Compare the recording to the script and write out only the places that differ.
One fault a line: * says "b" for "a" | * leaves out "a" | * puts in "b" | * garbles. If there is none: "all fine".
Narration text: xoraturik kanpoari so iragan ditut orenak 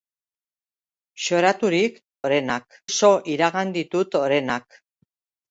* says "orenak" for "kanpoari"